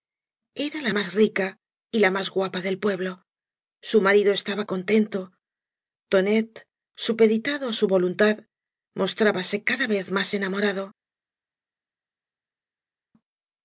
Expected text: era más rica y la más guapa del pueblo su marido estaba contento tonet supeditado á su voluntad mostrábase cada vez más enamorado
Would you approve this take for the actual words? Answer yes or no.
no